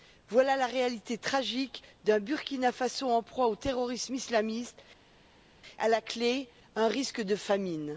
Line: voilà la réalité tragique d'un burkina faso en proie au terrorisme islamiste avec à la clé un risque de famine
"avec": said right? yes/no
no